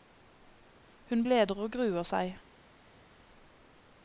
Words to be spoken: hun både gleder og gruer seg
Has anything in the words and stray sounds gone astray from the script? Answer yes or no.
yes